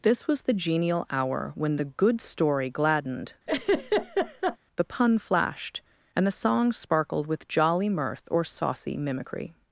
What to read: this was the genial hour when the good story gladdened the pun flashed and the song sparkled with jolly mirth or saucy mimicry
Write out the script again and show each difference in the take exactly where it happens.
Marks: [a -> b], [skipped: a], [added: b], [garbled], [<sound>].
this was the genial hour when the good story gladdened [laugh] the pun flashed and the song sparkled with jolly mirth or saucy mimicry